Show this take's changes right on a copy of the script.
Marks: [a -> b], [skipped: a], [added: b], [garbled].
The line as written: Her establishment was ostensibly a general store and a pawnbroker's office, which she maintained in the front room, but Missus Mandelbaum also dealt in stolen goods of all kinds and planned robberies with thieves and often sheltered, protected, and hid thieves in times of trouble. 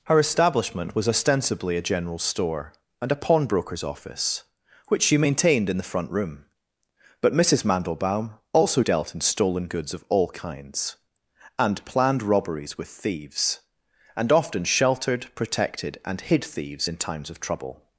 Her establishment was ostensibly a general store and a pawnbroker's office, which she maintained in the front room, but Missus Mandelbaum also dealt in stolen goods of all kinds and planned robberies with thieves and often sheltered, protected, and hid thieves in times of trouble.